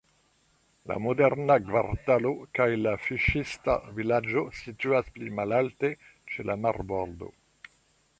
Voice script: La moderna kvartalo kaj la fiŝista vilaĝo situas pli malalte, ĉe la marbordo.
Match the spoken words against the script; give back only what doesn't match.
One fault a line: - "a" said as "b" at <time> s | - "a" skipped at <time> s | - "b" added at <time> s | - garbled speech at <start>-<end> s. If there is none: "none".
none